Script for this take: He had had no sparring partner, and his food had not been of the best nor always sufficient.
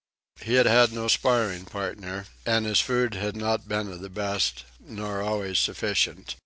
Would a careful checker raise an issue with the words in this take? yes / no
no